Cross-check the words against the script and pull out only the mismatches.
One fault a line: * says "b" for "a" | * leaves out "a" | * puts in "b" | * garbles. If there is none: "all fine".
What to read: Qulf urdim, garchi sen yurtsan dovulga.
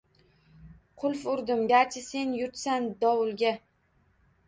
all fine